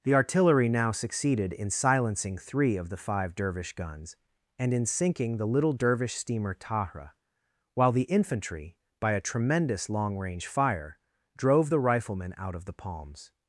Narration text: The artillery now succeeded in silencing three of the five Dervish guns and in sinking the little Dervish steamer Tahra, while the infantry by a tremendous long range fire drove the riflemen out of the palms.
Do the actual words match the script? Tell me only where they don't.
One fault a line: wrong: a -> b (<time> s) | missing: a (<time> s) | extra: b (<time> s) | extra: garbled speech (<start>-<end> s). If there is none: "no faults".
no faults